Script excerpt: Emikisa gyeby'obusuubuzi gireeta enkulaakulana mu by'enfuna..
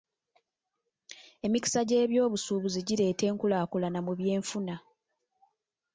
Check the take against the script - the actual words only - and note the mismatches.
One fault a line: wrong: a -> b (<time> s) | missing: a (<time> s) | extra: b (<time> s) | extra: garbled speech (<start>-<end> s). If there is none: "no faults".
no faults